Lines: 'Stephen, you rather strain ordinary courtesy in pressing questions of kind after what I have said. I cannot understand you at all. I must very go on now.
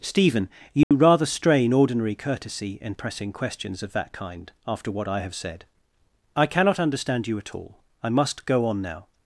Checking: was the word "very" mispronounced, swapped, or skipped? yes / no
yes